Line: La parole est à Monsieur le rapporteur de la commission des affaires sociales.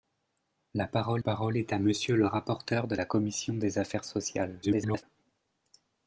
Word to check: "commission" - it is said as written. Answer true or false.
true